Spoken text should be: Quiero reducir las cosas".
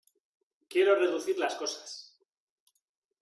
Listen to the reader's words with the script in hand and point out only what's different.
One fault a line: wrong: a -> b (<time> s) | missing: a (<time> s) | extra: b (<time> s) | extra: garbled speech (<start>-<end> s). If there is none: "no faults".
no faults